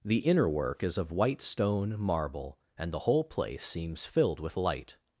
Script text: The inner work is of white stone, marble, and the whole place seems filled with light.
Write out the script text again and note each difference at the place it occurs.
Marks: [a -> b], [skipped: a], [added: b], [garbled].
The inner work is of white stone, marble, and the whole place seems filled with light.